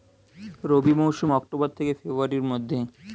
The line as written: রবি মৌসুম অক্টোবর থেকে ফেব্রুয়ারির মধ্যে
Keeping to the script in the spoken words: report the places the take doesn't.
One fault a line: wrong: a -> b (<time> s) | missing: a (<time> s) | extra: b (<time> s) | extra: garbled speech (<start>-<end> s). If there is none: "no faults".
no faults